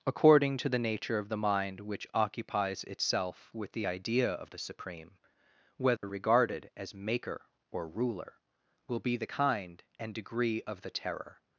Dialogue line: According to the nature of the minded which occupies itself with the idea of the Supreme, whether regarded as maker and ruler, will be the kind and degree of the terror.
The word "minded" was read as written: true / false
false